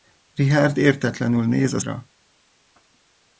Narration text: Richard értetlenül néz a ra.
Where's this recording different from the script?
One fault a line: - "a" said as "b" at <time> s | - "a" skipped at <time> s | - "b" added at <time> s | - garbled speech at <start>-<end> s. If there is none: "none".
none